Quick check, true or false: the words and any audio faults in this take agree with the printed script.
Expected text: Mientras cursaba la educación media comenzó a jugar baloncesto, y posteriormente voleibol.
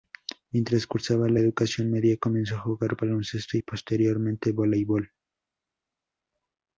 true